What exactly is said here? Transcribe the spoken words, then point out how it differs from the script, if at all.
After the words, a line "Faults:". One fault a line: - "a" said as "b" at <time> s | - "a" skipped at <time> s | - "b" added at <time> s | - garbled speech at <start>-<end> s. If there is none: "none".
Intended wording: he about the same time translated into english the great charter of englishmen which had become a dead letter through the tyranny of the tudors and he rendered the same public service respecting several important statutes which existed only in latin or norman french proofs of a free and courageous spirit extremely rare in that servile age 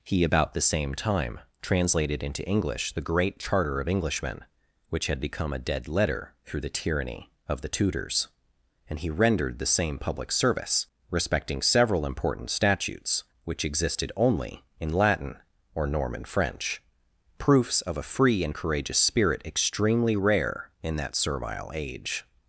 he about the same time translated into english the great charter of englishmen which had become a dead letter through the tyranny of the tudors and he rendered the same public service respecting several important statutes which existed only in latin or norman french proofs of a free and courageous spirit extremely rare in that servile age
Faults:
none